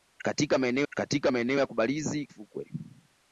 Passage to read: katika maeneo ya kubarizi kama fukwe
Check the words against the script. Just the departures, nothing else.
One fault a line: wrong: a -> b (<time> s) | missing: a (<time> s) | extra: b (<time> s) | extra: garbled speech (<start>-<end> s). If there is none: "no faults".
extra: katika maeneo (0.9 s)
missing: kama (2.3 s)